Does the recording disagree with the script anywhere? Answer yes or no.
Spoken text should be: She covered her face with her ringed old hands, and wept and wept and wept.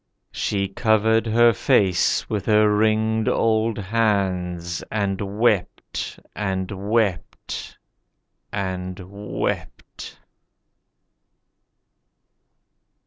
no